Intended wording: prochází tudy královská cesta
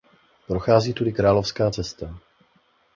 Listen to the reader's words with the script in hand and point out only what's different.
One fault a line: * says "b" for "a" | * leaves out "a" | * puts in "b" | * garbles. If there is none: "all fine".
all fine